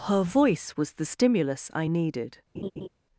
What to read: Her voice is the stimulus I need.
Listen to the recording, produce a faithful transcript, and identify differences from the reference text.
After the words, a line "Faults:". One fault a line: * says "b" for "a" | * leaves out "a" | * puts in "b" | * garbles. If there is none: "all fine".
Her voice was the stimulus I needed.
Faults:
* says "was" for "is"
* says "needed" for "need"